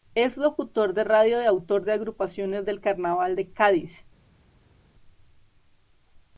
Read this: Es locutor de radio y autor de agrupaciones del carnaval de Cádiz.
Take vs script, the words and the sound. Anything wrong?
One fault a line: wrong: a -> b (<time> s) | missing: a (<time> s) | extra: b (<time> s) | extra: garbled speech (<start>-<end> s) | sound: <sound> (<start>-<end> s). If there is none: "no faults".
no faults